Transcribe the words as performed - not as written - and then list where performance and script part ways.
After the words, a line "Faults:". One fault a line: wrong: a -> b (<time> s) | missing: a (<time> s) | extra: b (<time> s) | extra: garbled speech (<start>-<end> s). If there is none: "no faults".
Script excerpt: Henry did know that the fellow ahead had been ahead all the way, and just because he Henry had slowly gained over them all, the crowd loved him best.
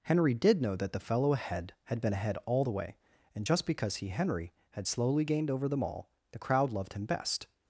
Henry did know that the fellow ahead had been ahead all the way, and just because he Henry had slowly gained over them all, the crowd loved him best.
Faults:
no faults